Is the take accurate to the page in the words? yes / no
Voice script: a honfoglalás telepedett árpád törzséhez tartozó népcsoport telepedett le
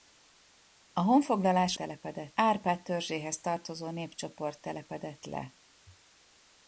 yes